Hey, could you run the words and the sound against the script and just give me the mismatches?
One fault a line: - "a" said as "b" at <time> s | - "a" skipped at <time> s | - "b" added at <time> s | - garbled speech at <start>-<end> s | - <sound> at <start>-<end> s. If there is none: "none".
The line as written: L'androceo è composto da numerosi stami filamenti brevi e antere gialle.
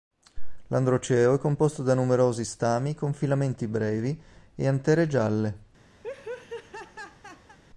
- "con" added at 2.9 s
- laugh at 6.0-7.6 s